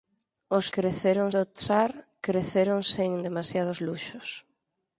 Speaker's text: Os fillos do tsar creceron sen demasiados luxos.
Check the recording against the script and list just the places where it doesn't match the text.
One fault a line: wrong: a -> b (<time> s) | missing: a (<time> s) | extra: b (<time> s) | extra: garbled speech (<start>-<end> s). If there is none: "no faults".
wrong: fillos -> creceron (0.8 s)